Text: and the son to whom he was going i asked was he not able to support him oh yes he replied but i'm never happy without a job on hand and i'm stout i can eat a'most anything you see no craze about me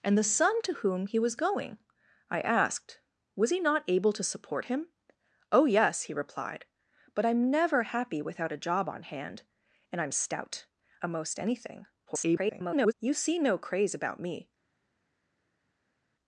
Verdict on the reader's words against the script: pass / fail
fail